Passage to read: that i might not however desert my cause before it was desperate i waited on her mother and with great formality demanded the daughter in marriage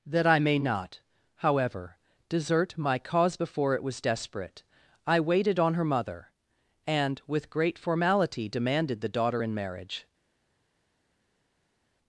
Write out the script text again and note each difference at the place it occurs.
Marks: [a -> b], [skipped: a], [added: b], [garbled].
that i [might -> may] not however desert my cause before it was desperate i waited on her mother and with great formality demanded the daughter in marriage